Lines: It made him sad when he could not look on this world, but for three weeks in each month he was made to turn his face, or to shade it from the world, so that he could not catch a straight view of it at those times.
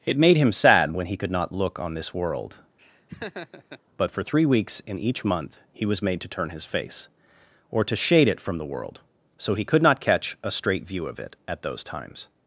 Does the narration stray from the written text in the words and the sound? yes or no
yes